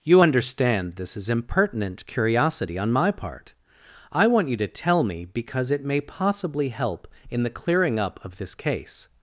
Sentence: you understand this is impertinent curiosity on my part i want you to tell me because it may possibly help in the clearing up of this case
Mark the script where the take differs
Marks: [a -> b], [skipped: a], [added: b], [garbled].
you understand this is impertinent curiosity on my part i want you to tell me because it may possibly help in the clearing up of this case